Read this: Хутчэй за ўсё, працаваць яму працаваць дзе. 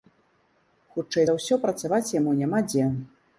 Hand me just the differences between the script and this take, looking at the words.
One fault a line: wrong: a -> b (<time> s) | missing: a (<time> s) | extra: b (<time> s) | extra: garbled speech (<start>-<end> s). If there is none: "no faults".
wrong: працаваць -> няма (2.5 s)